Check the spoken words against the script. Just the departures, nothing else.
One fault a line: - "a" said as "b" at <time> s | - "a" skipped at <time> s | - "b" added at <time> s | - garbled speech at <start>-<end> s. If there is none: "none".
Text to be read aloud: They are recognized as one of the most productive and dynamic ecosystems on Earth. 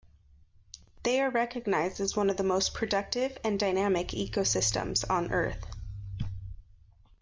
none